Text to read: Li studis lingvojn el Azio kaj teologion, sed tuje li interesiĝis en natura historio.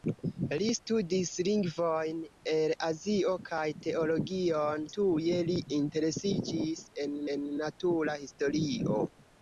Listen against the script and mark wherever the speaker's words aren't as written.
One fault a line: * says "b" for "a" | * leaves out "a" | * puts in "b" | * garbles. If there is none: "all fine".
* leaves out "sed"
* puts in "en"